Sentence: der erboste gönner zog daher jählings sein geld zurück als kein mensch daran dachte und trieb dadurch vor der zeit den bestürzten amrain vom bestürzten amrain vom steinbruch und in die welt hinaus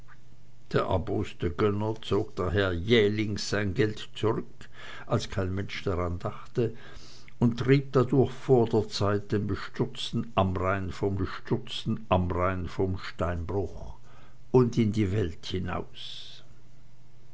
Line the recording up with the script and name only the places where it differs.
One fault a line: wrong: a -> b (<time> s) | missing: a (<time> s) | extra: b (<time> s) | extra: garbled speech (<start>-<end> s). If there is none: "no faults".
no faults